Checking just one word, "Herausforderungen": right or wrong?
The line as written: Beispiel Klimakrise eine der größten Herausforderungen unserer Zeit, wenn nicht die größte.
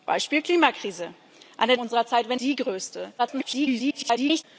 wrong